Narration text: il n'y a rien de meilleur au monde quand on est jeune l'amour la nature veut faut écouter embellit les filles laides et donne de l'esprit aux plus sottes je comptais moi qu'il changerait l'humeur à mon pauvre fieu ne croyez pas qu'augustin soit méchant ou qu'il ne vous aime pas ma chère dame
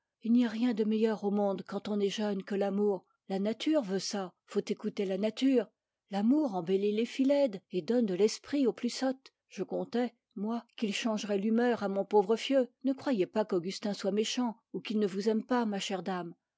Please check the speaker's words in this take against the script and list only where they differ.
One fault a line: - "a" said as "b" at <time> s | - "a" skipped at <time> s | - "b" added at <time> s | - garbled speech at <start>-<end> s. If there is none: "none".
- "que" added at 2.4 s
- "ça" added at 4.0 s
- "la nature l'amour" added at 5.0 s